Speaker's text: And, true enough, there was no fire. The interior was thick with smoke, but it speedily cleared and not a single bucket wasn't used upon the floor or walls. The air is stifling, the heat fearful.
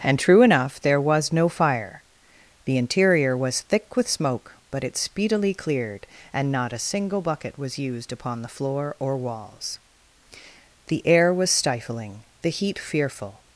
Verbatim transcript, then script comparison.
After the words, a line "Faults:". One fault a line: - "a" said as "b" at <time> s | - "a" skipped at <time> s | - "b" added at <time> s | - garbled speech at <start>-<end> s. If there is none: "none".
And, true enough, there was no fire. The interior was thick with smoke, but it speedily cleared and not a single bucket was used upon the floor or walls. The air was stifling, the heat fearful.
Faults:
- "wasn't" said as "was" at 7.6 s
- "is" said as "was" at 11.3 s